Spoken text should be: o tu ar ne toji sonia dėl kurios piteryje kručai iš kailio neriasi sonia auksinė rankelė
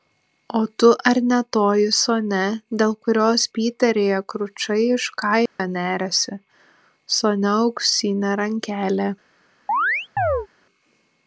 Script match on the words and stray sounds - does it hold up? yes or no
no